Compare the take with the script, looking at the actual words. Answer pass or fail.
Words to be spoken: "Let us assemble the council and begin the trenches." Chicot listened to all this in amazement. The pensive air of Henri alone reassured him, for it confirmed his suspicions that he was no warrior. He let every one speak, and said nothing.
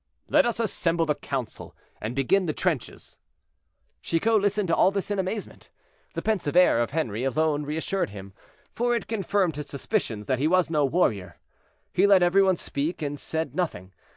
pass